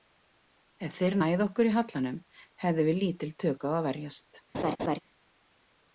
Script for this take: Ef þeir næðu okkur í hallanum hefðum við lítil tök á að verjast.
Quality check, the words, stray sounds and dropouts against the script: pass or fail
fail